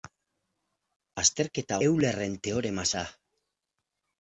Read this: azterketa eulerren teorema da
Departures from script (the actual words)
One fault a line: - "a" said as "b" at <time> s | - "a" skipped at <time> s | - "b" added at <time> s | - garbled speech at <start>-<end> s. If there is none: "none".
none